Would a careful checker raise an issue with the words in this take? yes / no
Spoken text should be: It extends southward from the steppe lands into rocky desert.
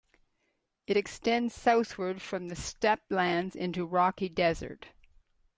no